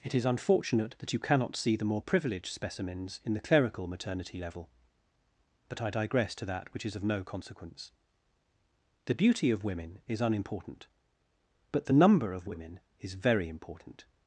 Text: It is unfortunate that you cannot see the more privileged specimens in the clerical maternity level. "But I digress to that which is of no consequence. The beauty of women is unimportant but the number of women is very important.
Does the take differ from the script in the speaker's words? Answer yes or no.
no